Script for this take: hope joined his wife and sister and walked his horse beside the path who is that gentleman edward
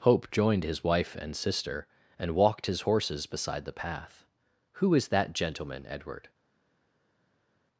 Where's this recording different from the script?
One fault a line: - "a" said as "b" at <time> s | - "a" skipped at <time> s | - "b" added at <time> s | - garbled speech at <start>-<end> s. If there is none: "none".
- "horse" said as "horses" at 2.8 s